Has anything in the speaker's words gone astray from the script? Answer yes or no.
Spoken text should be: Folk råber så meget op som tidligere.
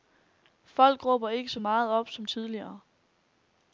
yes